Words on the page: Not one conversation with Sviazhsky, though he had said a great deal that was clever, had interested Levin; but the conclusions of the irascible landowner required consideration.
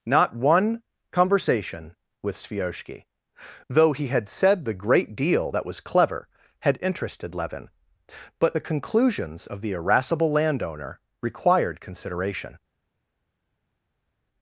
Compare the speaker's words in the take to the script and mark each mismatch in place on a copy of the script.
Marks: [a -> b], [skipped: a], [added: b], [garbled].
Not one conversation with Sviazhsky, though he had said [a -> the] great deal that was clever, had interested Levin; but the conclusions of the irascible landowner required consideration.